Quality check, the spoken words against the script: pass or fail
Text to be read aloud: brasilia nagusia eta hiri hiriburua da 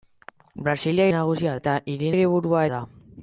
pass